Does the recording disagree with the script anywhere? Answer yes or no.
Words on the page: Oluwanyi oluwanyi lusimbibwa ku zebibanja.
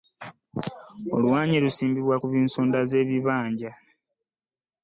yes